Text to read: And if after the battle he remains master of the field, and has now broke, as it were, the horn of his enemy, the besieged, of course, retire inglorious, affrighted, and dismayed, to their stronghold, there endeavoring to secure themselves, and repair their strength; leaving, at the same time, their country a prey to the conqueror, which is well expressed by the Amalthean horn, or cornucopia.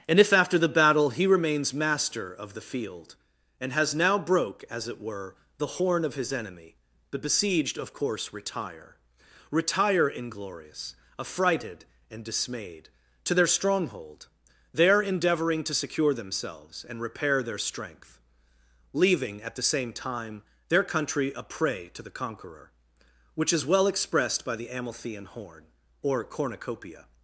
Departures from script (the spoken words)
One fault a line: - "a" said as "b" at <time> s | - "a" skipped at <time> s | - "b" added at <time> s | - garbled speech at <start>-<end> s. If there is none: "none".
- "retire" added at 9.5 s